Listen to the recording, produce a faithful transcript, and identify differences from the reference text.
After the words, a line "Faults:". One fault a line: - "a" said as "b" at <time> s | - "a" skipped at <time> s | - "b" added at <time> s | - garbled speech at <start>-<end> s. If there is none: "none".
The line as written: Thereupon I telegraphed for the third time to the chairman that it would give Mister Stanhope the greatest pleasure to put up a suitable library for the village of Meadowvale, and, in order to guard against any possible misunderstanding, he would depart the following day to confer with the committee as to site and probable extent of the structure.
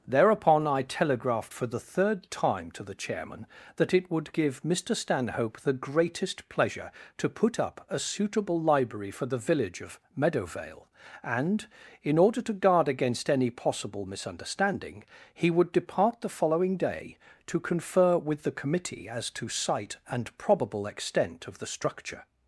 Thereupon I telegraphed for the third time to the chairman that it would give Mister Stanhope the greatest pleasure to put up a suitable library for the village of Meadowvale, and, in order to guard against any possible misunderstanding, he would depart the following day to confer with the committee as to site and probable extent of the structure.
Faults:
none